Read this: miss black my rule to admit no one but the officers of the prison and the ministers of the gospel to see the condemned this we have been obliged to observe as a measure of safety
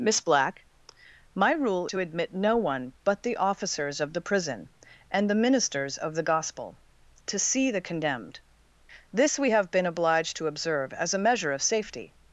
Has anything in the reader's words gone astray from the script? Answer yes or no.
no